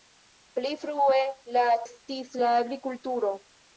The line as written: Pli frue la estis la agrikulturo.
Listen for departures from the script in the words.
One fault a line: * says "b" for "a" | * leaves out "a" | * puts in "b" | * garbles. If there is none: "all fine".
all fine